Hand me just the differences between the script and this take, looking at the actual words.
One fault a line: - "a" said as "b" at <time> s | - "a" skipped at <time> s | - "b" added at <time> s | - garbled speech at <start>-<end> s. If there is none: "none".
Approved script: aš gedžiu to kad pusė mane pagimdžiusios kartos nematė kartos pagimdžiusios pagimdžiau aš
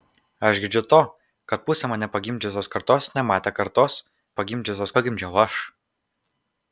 none